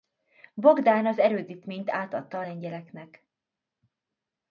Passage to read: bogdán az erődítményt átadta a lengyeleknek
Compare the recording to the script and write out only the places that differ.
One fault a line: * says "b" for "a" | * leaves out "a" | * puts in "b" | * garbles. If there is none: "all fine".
all fine